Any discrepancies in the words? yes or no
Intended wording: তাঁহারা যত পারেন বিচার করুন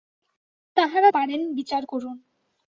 yes